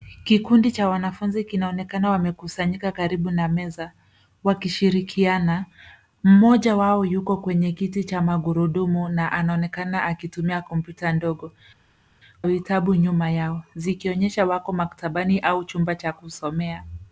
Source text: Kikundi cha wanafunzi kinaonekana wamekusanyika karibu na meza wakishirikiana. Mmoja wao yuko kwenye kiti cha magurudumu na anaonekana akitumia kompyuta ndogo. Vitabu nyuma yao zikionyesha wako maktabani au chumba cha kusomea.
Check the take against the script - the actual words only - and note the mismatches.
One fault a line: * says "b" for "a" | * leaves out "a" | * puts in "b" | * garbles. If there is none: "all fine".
all fine